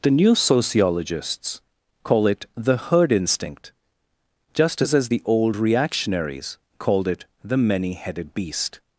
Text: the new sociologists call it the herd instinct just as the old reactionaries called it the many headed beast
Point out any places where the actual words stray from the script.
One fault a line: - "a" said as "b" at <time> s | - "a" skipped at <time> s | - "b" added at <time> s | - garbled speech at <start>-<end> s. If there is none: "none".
- "as" added at 5.0 s